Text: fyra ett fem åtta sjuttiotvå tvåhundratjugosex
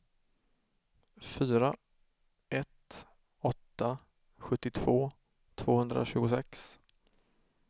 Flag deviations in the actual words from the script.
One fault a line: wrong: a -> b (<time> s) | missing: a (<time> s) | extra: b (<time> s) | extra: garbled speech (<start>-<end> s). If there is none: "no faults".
missing: fem (3.1 s)